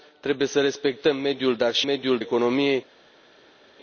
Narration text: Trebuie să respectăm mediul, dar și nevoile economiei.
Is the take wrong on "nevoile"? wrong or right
wrong